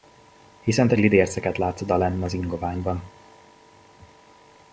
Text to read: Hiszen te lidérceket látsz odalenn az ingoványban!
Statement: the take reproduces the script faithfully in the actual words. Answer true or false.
true